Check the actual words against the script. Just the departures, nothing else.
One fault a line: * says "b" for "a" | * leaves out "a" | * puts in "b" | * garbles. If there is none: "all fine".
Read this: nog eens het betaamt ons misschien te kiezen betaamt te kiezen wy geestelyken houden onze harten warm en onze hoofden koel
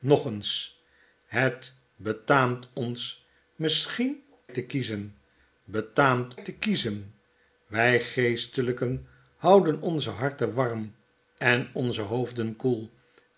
all fine